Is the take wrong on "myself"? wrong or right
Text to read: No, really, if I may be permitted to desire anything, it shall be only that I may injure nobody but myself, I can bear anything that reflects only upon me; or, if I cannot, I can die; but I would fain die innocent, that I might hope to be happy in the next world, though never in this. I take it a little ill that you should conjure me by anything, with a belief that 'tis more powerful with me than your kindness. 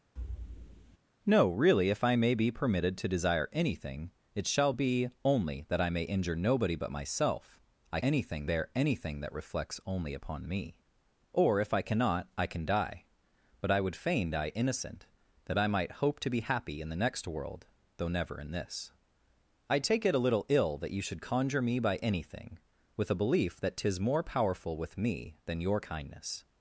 right